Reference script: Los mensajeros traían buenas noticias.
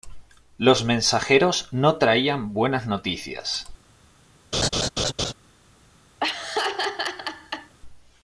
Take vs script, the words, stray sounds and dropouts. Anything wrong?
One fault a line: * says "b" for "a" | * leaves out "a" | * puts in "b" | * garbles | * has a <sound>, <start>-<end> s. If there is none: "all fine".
* puts in "no"
* has a laugh, 4.5-5.3 s
* has a laugh, 6.2-7.7 s